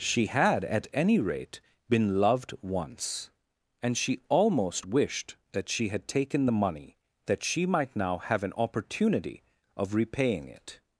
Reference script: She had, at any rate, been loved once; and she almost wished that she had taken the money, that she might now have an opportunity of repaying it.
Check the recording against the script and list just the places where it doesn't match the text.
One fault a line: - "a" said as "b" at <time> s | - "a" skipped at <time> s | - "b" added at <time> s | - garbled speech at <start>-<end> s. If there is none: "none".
none